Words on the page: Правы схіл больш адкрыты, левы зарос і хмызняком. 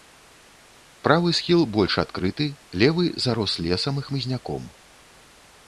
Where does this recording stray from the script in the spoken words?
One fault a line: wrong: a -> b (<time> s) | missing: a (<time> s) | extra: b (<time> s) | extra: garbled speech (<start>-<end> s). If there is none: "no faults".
extra: лесам (3.7 s)